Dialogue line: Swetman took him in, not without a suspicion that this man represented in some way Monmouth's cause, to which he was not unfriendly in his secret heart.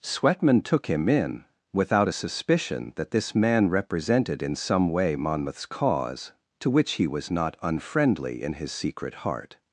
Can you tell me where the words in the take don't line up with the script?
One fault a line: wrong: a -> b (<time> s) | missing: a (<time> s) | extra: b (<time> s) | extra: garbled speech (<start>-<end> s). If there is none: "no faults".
missing: not (1.4 s)